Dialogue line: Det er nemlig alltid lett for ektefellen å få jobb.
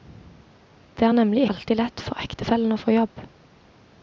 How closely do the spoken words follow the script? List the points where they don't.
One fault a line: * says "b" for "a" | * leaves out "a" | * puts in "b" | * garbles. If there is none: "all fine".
all fine